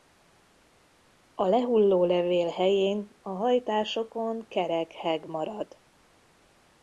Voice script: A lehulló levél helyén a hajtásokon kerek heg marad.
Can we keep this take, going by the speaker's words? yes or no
yes